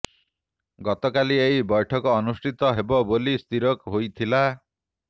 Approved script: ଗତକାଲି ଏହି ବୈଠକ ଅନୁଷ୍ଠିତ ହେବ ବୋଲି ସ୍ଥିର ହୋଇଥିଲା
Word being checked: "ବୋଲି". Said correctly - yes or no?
yes